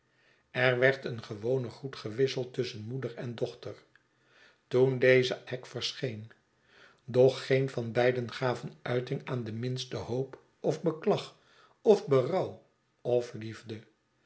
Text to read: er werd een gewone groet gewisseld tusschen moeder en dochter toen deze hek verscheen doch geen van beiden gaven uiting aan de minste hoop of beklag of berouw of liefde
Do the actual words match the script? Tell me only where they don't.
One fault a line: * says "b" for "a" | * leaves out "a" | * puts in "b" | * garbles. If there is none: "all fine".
all fine